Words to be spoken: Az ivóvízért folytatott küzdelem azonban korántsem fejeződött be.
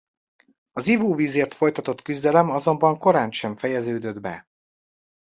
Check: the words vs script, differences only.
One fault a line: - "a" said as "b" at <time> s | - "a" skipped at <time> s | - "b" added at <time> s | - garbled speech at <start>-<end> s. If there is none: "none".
none